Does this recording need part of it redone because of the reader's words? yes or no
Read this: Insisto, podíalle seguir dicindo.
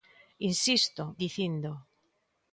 yes